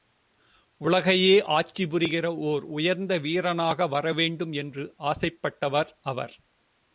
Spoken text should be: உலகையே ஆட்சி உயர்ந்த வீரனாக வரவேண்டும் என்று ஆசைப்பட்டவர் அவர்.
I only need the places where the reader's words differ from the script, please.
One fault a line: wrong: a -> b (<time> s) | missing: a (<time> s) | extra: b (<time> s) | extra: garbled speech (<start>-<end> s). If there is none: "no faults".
extra: புரிகிற ஓர் (1.9 s)